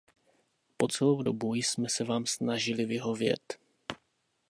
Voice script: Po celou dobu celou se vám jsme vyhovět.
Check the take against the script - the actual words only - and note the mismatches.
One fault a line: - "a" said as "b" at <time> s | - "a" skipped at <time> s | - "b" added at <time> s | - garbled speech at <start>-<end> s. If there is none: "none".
- "celou" said as "jsme" at 1.5 s
- "jsme" said as "snažili" at 2.3 s